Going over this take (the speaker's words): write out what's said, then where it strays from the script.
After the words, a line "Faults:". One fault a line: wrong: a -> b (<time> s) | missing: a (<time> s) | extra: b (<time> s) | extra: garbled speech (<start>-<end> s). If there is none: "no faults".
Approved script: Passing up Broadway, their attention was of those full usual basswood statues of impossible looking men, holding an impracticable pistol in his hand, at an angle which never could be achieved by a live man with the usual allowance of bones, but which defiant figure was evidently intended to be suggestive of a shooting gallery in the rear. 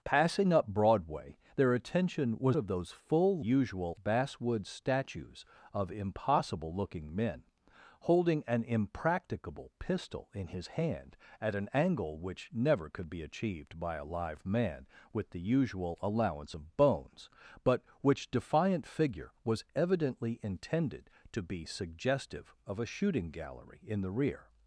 Passing up Broadway, their attention was of those full usual basswood statues of impossible looking men, holding an impracticable pistol in his hand, at an angle which never could be achieved by a live man with the usual allowance of bones, but which defiant figure was evidently intended to be suggestive of a shooting gallery in the rear.
Faults:
no faults